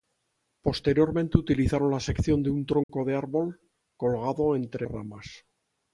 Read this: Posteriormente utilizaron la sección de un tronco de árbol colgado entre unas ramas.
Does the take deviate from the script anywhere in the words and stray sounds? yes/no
yes